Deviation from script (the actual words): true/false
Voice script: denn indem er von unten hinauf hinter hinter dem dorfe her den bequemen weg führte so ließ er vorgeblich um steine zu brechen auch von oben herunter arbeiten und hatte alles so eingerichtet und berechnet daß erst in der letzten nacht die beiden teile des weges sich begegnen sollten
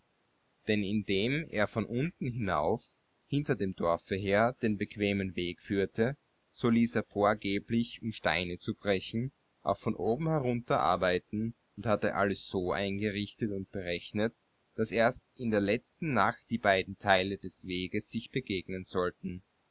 true